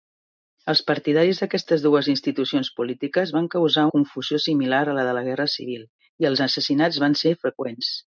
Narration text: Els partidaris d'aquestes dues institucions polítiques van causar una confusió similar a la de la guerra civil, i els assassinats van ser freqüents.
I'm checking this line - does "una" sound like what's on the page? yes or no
no